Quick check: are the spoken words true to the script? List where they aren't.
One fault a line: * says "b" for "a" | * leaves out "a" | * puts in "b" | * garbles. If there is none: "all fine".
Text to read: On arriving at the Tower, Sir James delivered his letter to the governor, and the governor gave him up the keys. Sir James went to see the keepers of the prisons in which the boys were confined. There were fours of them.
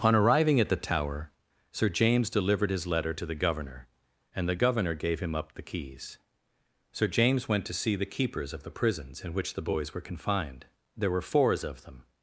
all fine